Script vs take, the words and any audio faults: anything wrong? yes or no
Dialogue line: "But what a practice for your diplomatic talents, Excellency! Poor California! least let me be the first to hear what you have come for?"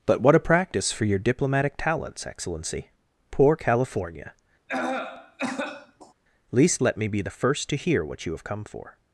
yes